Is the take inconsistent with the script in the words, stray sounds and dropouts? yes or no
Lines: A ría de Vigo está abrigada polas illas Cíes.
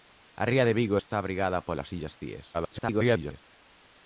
yes